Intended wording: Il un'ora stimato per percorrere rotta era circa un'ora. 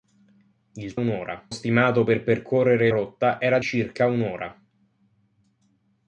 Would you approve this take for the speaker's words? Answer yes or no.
yes